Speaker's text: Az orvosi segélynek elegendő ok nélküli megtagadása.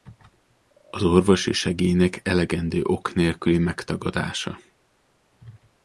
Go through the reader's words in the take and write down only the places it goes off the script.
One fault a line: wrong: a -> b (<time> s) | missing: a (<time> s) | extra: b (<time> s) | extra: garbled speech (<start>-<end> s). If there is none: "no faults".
no faults